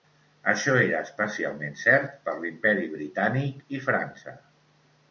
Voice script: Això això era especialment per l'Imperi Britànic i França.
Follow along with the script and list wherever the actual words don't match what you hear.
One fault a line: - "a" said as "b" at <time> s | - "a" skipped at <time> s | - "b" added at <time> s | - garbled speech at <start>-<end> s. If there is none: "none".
- "això" skipped at 0.7 s
- "cert" added at 1.8 s